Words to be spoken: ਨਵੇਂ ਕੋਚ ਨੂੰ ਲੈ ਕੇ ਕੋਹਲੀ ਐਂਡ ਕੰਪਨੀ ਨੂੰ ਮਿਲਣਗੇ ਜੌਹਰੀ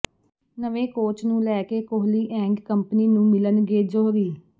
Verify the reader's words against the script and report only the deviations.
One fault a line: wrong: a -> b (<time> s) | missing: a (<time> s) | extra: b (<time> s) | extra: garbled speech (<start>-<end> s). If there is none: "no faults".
no faults